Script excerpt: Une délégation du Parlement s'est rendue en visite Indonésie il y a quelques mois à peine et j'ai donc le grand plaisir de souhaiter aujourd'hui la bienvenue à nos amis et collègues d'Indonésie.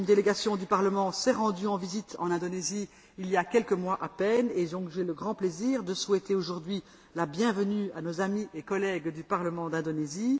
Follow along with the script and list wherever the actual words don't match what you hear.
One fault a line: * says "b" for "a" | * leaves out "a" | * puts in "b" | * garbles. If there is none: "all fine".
* puts in "en"
* puts in "du parlement"